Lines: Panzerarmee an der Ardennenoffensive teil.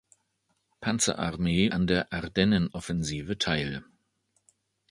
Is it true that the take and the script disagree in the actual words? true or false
false